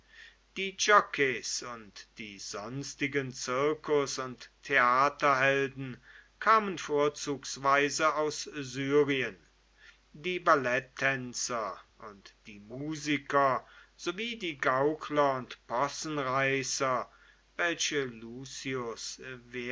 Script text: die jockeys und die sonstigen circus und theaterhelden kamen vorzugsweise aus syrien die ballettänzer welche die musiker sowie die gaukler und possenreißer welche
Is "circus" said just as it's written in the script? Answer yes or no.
yes